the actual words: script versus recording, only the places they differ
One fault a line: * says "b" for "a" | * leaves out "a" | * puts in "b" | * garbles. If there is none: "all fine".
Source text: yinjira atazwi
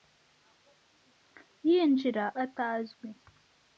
all fine